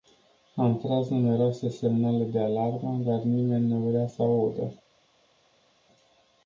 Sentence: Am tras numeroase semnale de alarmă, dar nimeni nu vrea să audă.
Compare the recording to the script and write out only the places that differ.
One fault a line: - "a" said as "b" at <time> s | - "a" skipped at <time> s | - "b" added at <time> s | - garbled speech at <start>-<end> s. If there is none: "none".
none